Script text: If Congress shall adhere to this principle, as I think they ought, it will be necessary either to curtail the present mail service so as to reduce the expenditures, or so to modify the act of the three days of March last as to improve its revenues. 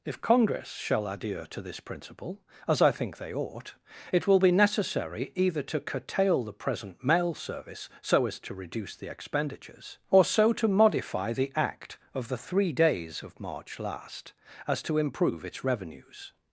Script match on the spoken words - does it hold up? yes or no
yes